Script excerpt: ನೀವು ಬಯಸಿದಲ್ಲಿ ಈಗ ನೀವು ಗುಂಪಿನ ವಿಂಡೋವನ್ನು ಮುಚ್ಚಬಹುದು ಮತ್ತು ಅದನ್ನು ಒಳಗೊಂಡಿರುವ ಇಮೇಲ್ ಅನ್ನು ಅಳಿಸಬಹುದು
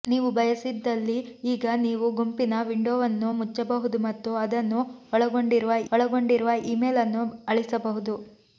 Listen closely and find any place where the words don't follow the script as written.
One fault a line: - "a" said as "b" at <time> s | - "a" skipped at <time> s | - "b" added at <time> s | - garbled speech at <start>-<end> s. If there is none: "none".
- "ಒಳಗೊಂಡಿರುವ" added at 5.9 s